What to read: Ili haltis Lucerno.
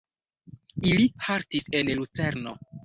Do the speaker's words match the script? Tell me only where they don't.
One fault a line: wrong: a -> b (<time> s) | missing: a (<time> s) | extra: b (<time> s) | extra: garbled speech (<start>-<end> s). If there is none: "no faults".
extra: en (1.8 s)